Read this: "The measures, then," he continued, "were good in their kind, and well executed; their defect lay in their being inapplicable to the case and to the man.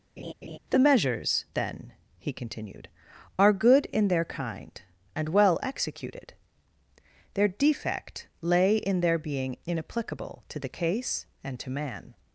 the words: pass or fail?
fail